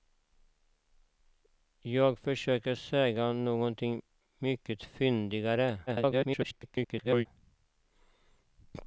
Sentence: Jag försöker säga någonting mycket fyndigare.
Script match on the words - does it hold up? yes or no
no